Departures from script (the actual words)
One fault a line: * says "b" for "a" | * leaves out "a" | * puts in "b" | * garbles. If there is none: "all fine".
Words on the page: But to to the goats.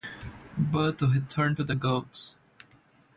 * puts in "return"